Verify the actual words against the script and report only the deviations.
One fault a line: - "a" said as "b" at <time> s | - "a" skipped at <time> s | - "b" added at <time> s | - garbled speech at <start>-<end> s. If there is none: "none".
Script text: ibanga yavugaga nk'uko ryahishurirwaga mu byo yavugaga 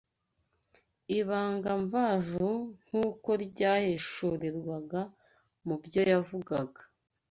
- "yavugaga" said as "mvajuru" at 1.8 s